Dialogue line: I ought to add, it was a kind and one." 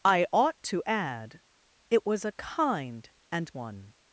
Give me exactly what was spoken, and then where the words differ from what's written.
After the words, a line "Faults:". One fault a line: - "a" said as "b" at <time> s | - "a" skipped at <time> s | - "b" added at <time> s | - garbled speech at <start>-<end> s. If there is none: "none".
I ought to add, it was a kind and one."
Faults:
none